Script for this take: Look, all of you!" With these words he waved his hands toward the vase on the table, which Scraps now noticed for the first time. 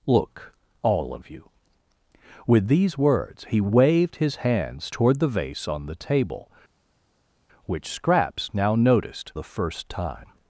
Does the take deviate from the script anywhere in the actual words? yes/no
yes